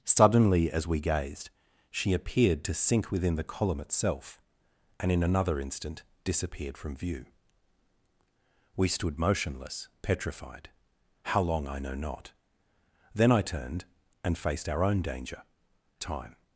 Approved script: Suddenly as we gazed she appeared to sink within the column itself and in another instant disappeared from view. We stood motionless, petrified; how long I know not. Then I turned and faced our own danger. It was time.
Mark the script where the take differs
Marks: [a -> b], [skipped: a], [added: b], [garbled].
Suddenly as we gazed she appeared to sink within the column itself and in another instant disappeared from view. We stood motionless, petrified; how long I know not. Then I turned and faced our own danger. [skipped: It was] time.